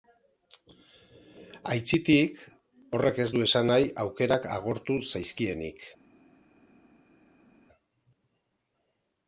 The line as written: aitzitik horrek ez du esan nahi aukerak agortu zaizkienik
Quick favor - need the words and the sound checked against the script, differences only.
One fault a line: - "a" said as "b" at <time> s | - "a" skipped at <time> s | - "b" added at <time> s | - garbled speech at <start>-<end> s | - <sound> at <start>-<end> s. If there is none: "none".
none